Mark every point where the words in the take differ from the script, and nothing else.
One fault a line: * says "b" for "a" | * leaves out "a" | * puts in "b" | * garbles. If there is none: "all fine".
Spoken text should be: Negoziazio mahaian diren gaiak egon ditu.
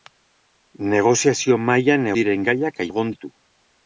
all fine